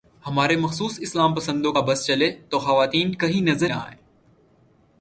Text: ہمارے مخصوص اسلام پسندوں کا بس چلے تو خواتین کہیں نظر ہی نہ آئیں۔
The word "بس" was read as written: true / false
true